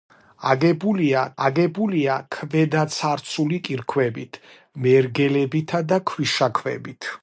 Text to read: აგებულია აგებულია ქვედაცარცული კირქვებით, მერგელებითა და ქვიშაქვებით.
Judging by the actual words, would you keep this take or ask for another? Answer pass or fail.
pass